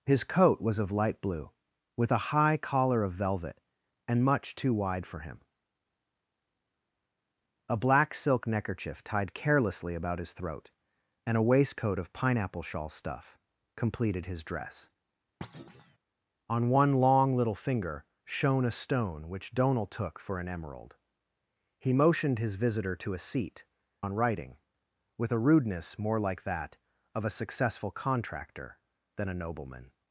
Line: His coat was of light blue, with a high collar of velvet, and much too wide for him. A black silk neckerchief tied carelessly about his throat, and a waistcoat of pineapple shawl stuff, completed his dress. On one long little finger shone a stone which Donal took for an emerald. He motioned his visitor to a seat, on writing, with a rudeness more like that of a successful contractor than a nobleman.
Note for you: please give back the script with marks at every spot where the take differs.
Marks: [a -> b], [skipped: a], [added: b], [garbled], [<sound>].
His coat was of light blue, with a high collar of velvet, and much too wide for him. A black silk neckerchief tied carelessly about his throat, and a waistcoat of pineapple shawl stuff, completed his dress. [thud] On one long little finger shone a stone which Donal took for an emerald. He motioned his visitor to a seat, on writing, with a rudeness more like that of a successful contractor than a nobleman.